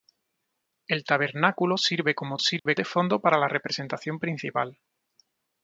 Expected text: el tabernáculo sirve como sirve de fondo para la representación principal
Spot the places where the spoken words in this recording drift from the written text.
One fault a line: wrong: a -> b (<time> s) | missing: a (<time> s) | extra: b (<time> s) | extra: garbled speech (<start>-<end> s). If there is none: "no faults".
no faults